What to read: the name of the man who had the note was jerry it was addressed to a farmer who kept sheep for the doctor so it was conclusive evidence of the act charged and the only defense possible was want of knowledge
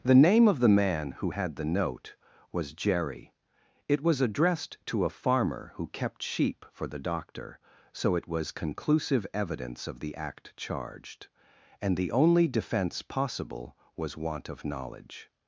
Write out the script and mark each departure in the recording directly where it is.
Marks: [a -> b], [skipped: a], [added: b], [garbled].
the name of the man who had the note was jerry it was addressed to a farmer who kept sheep for the doctor so it was conclusive evidence of the act charged and the only defense possible was want of knowledge